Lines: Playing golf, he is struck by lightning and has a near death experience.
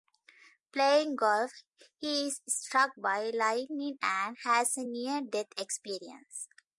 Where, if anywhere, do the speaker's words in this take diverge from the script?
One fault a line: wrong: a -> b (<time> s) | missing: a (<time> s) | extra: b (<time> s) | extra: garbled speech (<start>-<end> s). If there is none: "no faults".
no faults